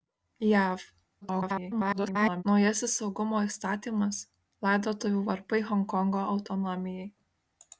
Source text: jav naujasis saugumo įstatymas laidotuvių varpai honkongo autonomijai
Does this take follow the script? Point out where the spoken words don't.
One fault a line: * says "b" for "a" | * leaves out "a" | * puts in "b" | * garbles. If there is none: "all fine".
* garbles